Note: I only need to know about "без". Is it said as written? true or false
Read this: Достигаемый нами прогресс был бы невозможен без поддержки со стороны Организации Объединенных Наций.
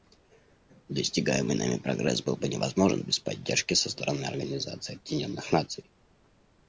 true